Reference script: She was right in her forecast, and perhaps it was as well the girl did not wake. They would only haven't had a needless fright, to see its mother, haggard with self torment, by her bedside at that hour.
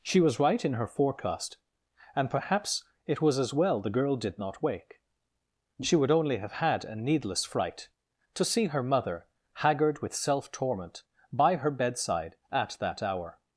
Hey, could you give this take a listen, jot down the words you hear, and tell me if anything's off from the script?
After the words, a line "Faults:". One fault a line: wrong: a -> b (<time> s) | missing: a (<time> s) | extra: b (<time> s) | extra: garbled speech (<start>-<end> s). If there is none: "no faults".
She was right in her forecast, and perhaps it was as well the girl did not wake. She would only have had a needless fright, to see her mother, haggard with self torment, by her bedside at that hour.
Faults:
wrong: They -> She (5.8 s)
wrong: haven't -> have (6.4 s)
wrong: its -> her (8.7 s)